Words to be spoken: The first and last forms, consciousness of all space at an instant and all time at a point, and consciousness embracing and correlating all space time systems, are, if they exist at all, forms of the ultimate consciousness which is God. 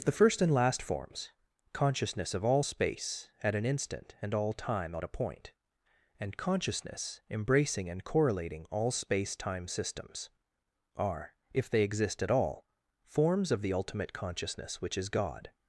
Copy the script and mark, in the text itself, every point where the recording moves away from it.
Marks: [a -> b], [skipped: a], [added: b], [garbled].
The first and last forms, consciousness of all space at an instant and all time at a point, and consciousness embracing and correlating all space time systems, are, if they exist at all, forms of the ultimate consciousness which is God.